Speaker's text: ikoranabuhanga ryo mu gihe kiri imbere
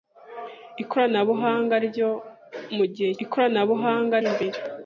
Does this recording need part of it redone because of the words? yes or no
yes